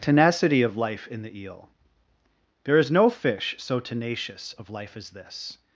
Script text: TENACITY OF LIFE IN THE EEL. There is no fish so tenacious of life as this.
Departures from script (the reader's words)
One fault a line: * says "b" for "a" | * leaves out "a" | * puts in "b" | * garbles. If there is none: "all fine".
all fine